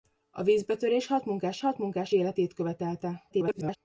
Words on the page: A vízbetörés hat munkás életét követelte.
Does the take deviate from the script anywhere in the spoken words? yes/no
yes